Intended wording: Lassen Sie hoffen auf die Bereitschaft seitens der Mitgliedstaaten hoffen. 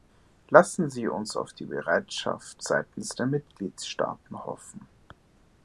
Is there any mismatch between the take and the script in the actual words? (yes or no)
yes